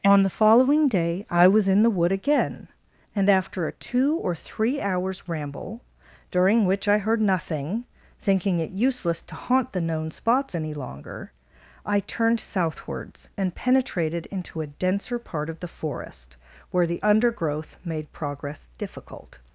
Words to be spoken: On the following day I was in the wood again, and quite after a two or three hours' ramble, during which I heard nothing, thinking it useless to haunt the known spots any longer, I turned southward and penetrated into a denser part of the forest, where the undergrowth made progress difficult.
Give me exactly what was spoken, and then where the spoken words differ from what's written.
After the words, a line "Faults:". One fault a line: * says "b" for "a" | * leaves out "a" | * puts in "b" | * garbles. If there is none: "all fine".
On the following day I was in the wood again, and after a two or three hours' ramble, during which I heard nothing, thinking it useless to haunt the known spots any longer, I turned southwards and penetrated into a denser part of the forest, where the undergrowth made progress difficult.
Faults:
* leaves out "quite"
* says "southwards" for "southward"